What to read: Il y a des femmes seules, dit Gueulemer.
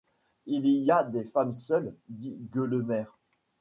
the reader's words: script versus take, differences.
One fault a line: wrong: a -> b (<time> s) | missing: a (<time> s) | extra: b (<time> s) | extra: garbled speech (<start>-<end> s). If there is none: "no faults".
no faults